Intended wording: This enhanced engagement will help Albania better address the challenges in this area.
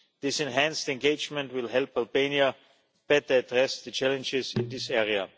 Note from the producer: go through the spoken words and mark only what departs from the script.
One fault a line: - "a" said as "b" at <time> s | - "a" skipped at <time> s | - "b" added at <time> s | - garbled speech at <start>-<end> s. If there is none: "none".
none